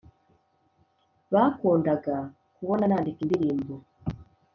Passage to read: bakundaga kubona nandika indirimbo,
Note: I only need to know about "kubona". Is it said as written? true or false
true